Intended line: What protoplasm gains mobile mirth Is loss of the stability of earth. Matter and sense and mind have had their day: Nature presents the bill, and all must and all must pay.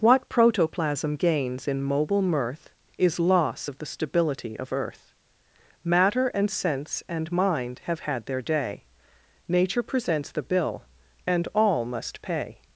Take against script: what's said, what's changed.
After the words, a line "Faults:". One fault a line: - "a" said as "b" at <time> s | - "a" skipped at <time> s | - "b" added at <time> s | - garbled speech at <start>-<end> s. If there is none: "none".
What protoplasm gains in mobile mirth Is loss of the stability of earth. Matter and sense and mind have had their day: Nature presents the bill, and all must pay.
Faults:
- "in" added at 1.7 s
- "and all must" skipped at 12.2 s